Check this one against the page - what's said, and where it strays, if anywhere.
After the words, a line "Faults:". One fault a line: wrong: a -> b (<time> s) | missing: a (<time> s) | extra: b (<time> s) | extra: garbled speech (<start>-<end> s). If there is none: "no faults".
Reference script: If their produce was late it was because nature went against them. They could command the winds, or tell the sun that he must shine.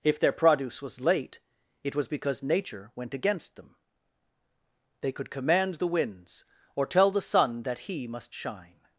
If their produce was late it was because nature went against them. They could command the winds, or tell the sun that he must shine.
Faults:
no faults